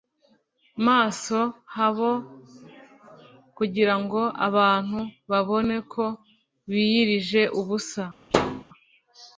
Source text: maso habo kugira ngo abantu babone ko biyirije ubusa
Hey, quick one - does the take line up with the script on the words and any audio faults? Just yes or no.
no